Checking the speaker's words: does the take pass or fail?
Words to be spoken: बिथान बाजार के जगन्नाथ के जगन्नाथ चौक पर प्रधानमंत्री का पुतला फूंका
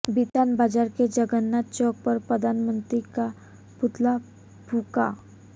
fail